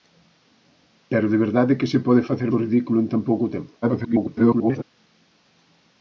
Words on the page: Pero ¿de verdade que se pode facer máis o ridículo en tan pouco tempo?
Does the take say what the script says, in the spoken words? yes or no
no